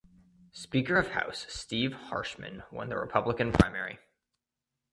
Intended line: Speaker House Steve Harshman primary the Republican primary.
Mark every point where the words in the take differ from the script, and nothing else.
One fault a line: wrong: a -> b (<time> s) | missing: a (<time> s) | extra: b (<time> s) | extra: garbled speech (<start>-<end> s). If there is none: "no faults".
extra: of (1.0 s)
wrong: primary -> won (2.7 s)